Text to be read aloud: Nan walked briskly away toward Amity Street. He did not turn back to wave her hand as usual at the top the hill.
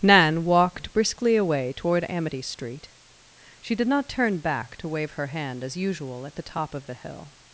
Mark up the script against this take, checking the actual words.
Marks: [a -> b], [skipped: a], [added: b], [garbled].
Nan walked briskly away toward Amity Street. [He -> She] did not turn back to wave her hand as usual at the top [added: of] the hill.